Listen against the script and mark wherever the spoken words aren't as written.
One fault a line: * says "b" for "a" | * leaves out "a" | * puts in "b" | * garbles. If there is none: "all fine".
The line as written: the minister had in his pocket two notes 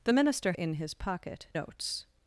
* leaves out "had"
* leaves out "two"